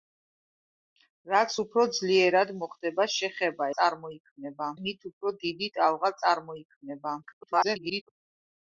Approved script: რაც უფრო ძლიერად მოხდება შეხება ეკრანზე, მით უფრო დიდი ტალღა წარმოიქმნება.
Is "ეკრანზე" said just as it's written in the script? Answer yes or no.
no